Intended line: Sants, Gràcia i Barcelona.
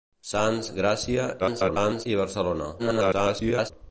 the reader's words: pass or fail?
fail